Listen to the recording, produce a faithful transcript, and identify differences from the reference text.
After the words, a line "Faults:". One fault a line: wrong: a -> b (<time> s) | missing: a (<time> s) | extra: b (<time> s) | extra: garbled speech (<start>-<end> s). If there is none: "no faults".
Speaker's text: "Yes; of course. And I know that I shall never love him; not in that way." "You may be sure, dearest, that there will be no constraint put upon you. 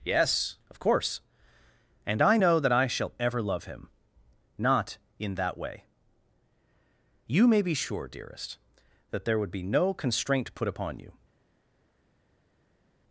"Yes; of course. And I know that I shall ever love him; not in that way." "You may be sure, dearest, that there would be no constraint put upon you.
Faults:
wrong: never -> ever (3.2 s)
wrong: will -> would (9.4 s)